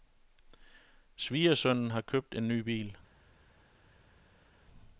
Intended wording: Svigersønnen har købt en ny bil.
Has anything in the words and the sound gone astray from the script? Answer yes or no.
no